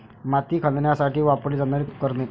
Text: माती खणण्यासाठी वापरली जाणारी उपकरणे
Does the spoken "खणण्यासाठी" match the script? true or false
true